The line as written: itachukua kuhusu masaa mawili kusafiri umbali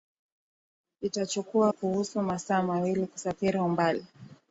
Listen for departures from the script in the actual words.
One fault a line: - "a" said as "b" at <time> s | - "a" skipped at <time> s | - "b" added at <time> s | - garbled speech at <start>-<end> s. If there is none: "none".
none